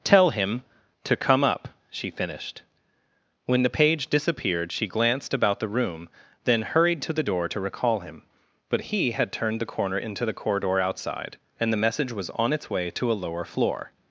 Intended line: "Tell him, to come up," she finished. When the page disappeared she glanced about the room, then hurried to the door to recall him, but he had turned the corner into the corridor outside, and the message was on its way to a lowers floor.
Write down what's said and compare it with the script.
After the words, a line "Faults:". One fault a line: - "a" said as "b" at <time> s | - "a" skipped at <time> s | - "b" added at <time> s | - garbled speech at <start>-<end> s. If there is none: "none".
"Tell him, to come up," she finished. When the page disappeared she glanced about the room, then hurried to the door to recall him, but he had turned the corner into the corridor outside, and the message was on its way to a lower floor.
Faults:
- "lowers" said as "lower" at 13.2 s